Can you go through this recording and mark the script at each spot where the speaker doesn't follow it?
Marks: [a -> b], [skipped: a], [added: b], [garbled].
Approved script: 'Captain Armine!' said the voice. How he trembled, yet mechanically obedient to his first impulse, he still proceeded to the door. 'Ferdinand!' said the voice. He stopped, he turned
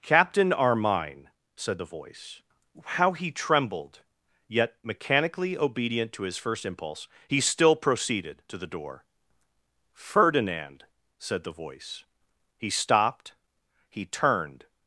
'Captain Armine!' said the voice. How he trembled, yet mechanically obedient to his first impulse, he still proceeded to the door. 'Ferdinand!' said the voice. He stopped, he turned